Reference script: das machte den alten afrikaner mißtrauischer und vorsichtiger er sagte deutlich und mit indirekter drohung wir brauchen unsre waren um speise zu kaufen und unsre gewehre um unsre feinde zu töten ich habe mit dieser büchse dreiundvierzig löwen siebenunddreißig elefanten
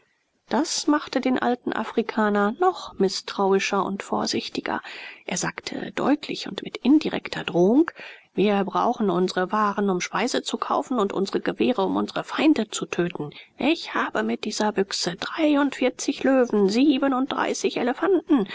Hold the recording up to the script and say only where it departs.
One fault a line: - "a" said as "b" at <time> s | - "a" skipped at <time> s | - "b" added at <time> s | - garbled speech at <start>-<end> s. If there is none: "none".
- "noch" added at 2.6 s